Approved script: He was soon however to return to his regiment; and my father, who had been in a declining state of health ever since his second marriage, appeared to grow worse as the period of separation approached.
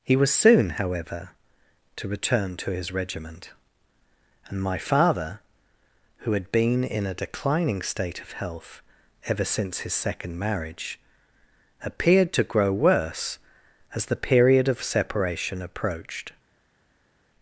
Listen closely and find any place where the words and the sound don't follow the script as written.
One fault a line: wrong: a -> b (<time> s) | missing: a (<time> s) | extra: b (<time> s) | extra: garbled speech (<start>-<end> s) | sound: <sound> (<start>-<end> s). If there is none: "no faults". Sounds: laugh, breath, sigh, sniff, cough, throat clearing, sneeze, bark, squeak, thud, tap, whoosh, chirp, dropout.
no faults